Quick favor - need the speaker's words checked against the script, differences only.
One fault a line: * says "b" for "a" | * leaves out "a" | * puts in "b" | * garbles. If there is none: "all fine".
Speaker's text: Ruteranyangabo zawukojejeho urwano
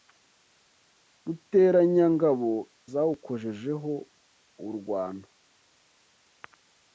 all fine